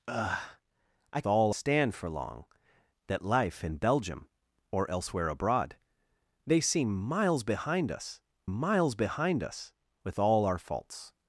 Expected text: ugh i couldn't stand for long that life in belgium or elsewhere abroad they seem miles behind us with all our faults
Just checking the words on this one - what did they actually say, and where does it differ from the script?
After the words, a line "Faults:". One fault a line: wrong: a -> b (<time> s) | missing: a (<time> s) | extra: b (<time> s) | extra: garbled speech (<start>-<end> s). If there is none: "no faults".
ugh i all stand for long that life in belgium or elsewhere abroad they seem miles behind us miles behind us with all our faults
Faults:
wrong: couldn't -> all (1.3 s)
extra: miles behind us (8.4 s)